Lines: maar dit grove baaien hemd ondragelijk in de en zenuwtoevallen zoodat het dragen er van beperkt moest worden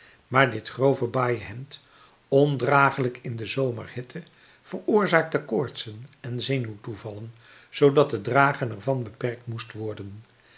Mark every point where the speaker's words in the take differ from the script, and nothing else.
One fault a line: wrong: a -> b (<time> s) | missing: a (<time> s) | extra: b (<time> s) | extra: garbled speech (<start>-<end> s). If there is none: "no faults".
extra: zomerhitte veroorzaakte koortsen (3.5 s)